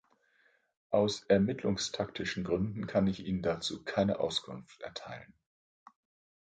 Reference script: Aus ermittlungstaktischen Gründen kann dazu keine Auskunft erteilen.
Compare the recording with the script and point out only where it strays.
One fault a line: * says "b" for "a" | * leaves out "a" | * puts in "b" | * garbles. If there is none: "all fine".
* puts in "ich Ihnen"